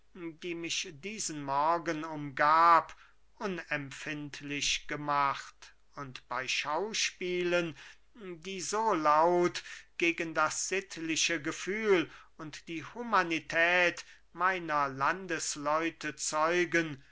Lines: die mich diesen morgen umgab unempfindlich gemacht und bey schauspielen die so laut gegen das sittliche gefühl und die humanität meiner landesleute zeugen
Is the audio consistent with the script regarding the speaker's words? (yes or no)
yes